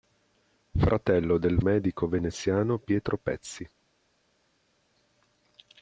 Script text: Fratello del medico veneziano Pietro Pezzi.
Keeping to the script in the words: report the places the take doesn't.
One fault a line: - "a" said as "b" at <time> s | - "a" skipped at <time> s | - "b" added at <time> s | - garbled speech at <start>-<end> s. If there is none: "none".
none